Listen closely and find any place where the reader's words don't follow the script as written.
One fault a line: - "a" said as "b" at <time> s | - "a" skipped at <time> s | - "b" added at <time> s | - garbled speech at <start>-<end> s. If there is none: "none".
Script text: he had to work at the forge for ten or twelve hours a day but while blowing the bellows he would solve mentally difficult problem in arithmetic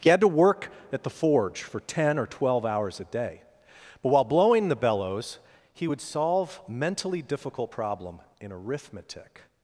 none